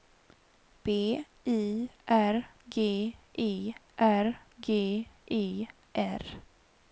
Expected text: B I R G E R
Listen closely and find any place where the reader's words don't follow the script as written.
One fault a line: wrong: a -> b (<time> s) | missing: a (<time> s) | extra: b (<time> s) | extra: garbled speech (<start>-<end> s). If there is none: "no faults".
extra: G E R (4.6 s)